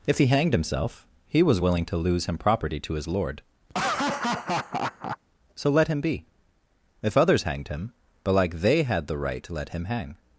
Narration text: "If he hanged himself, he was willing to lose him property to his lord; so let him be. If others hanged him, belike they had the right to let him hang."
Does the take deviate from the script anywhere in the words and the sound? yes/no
yes